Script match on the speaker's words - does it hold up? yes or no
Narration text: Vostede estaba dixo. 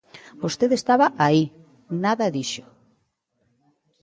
no